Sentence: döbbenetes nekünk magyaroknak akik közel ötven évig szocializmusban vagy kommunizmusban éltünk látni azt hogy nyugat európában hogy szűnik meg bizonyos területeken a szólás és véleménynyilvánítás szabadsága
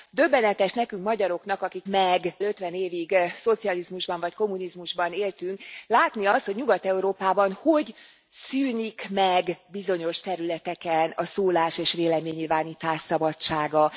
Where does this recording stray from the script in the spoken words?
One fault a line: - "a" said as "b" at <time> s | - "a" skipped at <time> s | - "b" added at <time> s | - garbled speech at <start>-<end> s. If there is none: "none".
- "közel" said as "meg" at 1.9 s